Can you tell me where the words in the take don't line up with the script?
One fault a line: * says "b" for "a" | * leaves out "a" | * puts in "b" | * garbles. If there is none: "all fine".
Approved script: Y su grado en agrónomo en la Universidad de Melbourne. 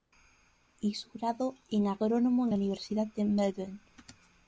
all fine